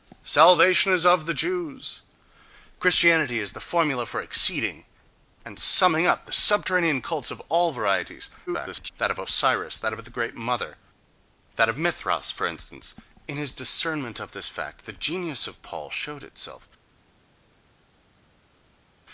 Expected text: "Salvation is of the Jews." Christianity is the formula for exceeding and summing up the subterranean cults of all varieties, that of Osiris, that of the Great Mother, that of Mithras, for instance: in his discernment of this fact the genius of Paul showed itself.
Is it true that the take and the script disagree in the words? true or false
true